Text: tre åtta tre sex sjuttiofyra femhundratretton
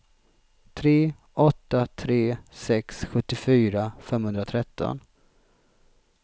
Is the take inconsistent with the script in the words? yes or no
no